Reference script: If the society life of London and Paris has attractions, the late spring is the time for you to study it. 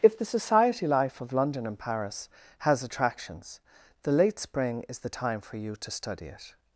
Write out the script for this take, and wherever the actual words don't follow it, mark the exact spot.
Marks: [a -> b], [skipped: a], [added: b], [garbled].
If the society life of London and Paris has attractions, the late spring is the time for you to study it.